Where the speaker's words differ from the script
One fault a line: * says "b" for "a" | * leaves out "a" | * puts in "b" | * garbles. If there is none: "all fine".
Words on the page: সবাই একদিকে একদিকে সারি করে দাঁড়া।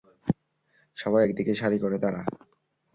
* leaves out "একদিকে"